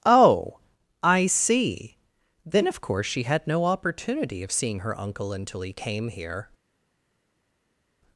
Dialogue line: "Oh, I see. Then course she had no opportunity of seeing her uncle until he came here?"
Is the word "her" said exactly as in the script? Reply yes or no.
yes